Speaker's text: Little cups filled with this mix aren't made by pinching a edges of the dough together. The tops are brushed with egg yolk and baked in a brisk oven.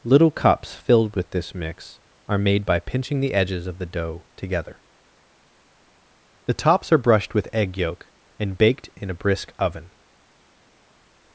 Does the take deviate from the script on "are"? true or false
false